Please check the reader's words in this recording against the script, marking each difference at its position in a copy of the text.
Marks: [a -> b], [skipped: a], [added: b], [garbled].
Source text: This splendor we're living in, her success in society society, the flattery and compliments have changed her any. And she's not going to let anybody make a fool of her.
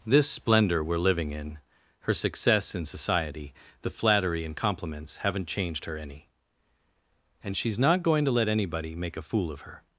This splendor we're living in, her success in society [skipped: society,] the flattery and compliments [have -> haven't] changed her any. And she's not going to let anybody make a fool of her.